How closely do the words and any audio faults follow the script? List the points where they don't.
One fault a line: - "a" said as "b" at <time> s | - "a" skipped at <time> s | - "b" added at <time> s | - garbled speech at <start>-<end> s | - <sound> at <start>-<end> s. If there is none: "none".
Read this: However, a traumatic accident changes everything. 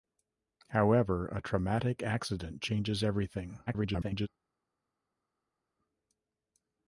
- garbled speech at 3.7-4.3 s